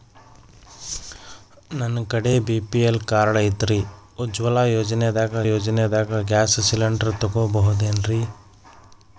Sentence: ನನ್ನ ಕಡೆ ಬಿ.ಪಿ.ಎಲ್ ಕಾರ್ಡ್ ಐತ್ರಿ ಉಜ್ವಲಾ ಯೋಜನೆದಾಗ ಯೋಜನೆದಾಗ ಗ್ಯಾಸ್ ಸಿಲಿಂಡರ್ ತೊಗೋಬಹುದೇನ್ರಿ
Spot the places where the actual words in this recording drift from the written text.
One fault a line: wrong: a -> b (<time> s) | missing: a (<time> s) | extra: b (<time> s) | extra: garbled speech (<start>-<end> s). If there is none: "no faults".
no faults